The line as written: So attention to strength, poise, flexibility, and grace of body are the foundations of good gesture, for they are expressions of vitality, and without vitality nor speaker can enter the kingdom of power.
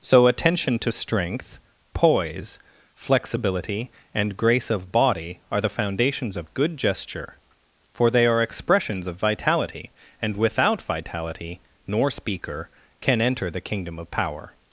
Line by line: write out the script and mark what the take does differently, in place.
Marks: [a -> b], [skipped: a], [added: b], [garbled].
So attention to strength, poise, flexibility, and grace of body are the foundations of good gesture, for they are expressions of vitality, and without vitality nor speaker can enter the kingdom of power.